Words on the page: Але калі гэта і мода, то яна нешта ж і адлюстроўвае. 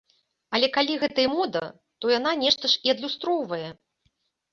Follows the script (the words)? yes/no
yes